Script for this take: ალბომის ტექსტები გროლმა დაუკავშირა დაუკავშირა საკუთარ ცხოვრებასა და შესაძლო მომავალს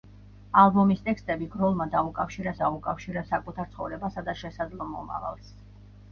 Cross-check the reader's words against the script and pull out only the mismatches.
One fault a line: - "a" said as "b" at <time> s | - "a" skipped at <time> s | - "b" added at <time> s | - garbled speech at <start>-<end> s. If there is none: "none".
none